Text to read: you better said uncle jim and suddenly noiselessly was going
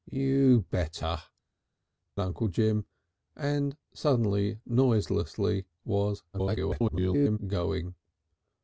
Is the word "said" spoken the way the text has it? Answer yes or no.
no